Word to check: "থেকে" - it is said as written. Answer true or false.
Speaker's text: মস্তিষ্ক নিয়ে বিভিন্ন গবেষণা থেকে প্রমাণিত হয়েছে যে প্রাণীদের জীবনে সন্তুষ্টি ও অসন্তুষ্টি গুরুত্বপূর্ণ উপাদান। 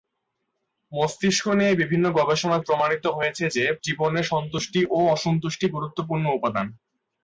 false